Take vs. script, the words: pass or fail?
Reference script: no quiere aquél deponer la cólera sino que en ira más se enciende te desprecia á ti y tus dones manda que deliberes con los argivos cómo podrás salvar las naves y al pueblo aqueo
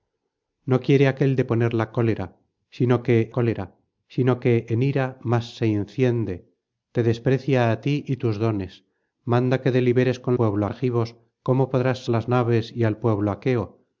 fail